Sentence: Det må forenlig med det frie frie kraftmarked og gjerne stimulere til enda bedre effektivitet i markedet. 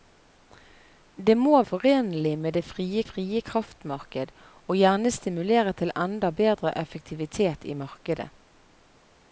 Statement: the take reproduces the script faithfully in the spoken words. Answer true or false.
true